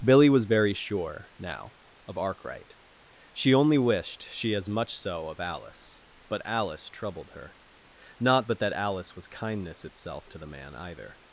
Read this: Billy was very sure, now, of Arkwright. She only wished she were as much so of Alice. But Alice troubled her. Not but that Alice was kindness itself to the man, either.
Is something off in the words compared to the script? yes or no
yes